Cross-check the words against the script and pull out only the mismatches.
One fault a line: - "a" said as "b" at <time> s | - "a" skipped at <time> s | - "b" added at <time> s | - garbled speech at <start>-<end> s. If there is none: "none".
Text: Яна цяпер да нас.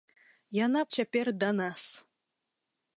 none